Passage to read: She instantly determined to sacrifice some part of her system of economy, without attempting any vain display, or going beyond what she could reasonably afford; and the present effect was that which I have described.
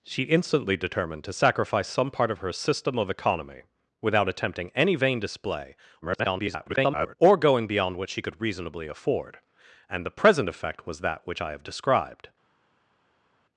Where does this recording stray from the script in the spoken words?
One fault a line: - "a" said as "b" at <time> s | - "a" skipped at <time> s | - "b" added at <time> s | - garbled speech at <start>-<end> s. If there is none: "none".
- garbled speech at 6.0-7.2 s